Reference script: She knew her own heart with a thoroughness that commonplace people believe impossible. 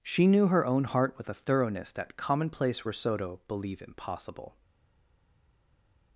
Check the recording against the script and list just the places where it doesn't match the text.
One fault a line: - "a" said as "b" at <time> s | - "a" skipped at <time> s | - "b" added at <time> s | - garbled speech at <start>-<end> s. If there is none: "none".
- "people" said as "risotto" at 2.8 s